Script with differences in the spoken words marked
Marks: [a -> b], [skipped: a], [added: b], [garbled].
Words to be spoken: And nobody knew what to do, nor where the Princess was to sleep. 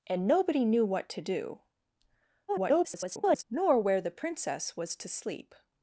And nobody knew what to do, [garbled] nor where the Princess was to sleep.